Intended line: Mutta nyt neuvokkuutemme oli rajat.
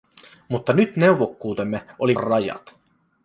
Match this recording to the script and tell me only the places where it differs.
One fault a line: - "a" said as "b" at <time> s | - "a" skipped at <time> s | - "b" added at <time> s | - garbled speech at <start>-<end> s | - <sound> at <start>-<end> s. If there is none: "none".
none